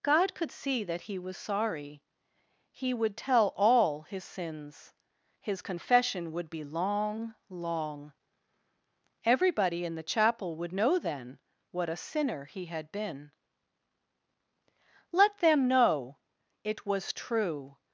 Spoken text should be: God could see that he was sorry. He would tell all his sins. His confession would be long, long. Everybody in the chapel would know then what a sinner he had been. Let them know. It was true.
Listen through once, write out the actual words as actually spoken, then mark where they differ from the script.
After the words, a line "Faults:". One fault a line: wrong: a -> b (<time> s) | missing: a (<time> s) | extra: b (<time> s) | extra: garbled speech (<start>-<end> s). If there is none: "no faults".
God could see that he was sorry. He would tell all his sins. His confession would be long, long. Everybody in the chapel would know then what a sinner he had been. Let them know. It was true.
Faults:
no faults